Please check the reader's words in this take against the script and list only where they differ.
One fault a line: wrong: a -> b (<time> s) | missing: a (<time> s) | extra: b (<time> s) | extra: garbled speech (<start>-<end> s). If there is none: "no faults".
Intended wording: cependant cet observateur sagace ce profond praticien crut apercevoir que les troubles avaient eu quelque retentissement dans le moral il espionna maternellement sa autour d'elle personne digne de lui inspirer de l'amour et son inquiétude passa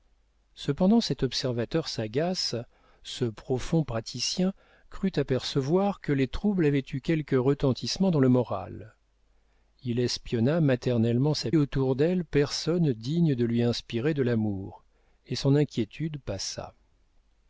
no faults